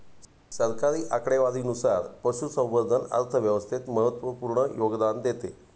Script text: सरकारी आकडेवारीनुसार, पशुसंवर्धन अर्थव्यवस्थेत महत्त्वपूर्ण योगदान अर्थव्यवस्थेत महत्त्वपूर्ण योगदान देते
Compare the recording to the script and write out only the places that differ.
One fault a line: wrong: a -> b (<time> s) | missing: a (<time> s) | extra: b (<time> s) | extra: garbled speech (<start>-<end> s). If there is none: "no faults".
missing: अर्थव्यवस्थेत महत्त्वपूर्ण योगदान (5.2 s)